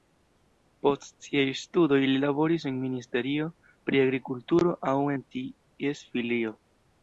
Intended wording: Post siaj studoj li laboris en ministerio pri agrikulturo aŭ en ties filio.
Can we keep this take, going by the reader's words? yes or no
yes